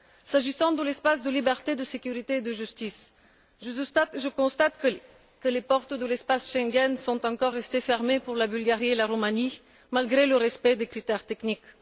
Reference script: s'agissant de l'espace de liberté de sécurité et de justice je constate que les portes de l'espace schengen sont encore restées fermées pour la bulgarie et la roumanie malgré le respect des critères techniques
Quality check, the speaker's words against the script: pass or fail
pass